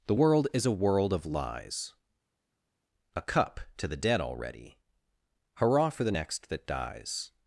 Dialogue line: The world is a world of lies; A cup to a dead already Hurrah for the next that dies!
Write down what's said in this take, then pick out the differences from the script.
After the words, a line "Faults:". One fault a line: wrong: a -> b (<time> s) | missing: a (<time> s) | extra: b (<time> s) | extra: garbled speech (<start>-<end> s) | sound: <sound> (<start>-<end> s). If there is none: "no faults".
The world is a world of lies; A cup to the dead already Hurrah for the next that dies!
Faults:
wrong: a -> the (3.9 s)